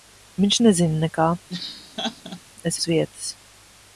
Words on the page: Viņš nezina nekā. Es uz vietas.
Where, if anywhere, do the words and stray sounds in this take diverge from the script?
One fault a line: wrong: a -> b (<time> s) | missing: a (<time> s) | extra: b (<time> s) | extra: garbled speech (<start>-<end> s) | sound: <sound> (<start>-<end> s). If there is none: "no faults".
sound: laugh (1.5-2.4 s)